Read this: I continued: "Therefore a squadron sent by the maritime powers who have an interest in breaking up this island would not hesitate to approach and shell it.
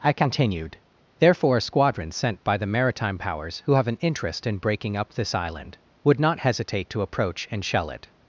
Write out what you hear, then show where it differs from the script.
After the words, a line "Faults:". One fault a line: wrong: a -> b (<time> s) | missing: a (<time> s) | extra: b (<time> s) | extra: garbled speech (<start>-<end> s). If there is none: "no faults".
I continued: "Therefore a squadron sent by the maritime powers who have an interest in breaking up this island would not hesitate to approach and shell it.
Faults:
no faults